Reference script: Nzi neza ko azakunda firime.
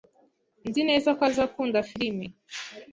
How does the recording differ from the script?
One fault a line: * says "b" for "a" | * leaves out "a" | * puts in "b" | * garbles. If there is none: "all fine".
all fine